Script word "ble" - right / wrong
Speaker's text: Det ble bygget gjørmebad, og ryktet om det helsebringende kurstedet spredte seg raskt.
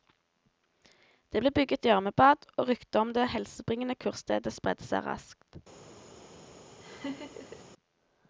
right